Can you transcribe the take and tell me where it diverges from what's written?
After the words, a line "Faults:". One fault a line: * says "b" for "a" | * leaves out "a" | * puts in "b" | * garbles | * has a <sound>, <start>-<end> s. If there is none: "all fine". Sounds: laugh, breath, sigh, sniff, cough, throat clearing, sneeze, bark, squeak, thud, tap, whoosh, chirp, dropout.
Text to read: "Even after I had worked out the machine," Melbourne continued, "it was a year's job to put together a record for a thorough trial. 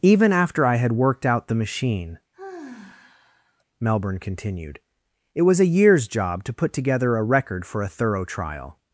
"Even after I had worked out the machine," Melbourne continued, "it was a year's job to put together a record for a thorough trial.
Faults:
* has a sigh, 2.3-3.6 s